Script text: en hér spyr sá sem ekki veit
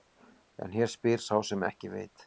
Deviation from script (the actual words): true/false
false